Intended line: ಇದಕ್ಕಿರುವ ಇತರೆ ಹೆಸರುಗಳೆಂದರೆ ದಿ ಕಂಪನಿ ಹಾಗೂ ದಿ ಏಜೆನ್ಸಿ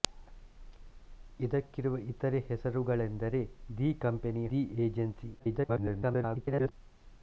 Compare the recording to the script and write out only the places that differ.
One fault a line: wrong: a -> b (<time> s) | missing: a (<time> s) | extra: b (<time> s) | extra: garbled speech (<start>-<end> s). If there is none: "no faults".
missing: ಹಾಗೂ (4.5 s)
extra: garbled speech (5.4-6.7 s)